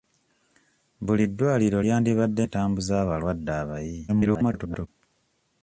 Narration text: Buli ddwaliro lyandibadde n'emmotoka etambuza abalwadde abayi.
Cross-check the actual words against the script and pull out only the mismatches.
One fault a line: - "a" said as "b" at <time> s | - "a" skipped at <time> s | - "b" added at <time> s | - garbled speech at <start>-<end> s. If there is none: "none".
- "n'emmotoka" skipped at 2.4 s
- garbled speech at 4.1-4.9 s